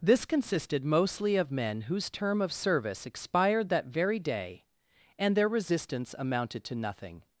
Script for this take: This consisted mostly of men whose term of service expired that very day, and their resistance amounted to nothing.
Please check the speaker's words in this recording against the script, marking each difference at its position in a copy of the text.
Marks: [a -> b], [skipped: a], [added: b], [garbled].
This consisted mostly of men whose term of service expired that very day, and their resistance amounted to nothing.